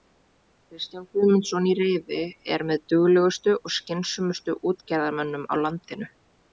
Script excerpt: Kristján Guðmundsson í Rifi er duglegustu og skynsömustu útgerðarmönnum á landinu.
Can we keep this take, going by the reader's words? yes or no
no